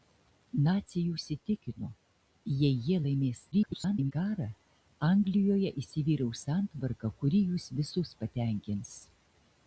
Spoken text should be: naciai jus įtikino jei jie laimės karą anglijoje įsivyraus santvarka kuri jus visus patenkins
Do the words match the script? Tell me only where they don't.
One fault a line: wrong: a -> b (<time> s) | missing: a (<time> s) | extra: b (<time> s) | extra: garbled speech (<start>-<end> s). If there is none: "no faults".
extra: garbled speech (3.5-4.1 s)